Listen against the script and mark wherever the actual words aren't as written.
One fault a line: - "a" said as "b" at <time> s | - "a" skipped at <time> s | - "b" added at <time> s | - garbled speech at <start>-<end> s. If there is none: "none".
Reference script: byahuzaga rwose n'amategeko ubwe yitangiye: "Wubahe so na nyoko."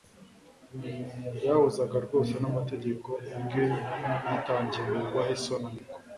none